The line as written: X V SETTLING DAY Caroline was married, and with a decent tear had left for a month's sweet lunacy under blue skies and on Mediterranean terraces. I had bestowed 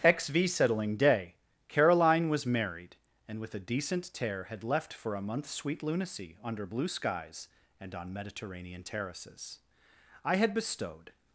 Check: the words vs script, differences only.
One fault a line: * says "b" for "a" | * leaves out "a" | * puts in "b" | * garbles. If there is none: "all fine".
all fine